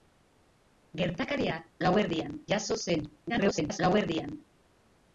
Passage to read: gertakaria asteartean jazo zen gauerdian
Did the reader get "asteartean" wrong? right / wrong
wrong